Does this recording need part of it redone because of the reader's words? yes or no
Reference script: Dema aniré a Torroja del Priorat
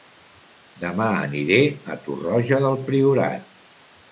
no